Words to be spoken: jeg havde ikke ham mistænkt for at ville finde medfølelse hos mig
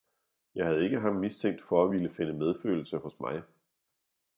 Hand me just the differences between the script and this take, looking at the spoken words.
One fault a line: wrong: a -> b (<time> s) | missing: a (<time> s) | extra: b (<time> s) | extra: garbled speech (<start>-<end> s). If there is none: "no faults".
no faults